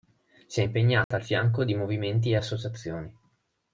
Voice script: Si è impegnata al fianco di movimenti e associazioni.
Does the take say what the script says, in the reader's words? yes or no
yes